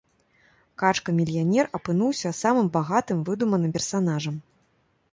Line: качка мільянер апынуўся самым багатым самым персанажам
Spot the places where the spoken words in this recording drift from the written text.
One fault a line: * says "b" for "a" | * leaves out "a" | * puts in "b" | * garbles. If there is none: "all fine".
* says "выдуманым" for "самым"